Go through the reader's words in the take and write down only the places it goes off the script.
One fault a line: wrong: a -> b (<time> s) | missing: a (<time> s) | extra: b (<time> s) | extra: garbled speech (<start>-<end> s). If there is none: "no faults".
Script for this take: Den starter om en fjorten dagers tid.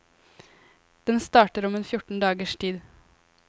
no faults